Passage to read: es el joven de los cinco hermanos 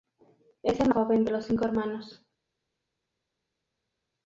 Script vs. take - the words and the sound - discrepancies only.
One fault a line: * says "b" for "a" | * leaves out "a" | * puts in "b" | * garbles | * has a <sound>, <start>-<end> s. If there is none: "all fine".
all fine